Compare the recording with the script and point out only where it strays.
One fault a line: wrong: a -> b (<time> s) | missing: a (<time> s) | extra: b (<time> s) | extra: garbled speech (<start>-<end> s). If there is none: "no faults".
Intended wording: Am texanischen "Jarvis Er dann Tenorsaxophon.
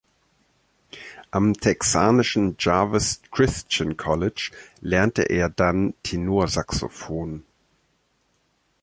extra: Christian College lernte (3.3 s)